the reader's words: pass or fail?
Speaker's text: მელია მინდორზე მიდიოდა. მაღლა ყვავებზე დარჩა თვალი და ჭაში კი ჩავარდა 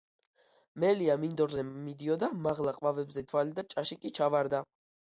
fail